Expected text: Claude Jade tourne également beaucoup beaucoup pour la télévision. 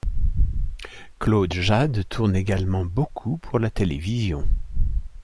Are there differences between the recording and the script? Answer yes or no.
yes